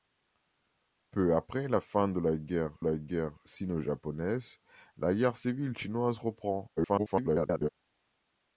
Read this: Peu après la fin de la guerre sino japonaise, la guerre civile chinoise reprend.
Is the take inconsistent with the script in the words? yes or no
yes